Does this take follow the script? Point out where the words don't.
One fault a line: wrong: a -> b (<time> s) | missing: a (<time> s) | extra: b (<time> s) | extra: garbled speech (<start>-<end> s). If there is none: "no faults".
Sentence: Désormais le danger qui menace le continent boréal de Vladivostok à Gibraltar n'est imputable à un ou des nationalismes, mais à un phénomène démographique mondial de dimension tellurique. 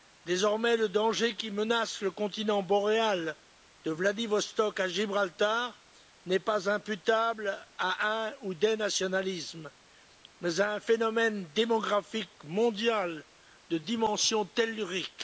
extra: pas (6.4 s)